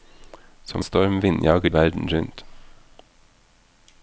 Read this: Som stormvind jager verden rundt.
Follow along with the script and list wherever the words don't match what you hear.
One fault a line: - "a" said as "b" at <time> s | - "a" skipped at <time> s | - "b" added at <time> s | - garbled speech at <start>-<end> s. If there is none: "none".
none